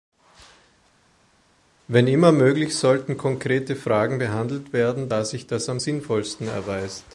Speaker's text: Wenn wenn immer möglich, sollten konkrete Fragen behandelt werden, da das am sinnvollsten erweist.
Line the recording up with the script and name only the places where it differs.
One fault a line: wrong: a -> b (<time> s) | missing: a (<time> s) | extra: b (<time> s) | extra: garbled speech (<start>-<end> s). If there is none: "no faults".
missing: wenn (2.1 s)
extra: sich (5.2 s)